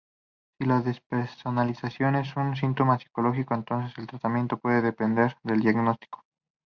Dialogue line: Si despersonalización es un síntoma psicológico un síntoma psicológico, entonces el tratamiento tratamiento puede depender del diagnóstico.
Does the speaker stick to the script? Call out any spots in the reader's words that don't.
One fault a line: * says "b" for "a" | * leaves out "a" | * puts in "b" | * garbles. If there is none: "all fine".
* puts in "la"
* leaves out "un síntoma psicológico"
* leaves out "tratamiento"